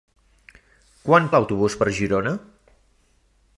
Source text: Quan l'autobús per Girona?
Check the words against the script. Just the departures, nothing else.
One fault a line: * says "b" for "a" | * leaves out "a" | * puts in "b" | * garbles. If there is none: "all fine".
all fine